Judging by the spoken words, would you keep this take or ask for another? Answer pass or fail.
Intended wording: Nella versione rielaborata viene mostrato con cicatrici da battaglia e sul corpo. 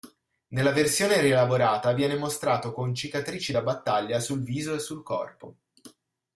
fail